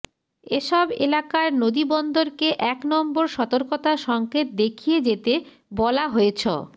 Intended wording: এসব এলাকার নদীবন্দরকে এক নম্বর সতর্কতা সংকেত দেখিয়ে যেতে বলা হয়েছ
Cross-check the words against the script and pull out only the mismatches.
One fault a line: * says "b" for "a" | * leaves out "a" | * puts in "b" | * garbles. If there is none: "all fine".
all fine